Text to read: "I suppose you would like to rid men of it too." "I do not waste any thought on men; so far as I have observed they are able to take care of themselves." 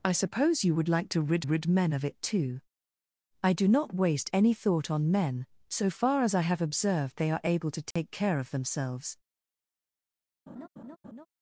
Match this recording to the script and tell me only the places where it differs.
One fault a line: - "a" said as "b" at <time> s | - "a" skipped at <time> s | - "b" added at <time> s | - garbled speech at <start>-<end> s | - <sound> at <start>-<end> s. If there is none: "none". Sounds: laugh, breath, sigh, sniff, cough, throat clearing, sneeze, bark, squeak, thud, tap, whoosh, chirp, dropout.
- "rid" added at 1.4 s
- dropout at 7.9-8.0 s
- laugh at 10.5-11.3 s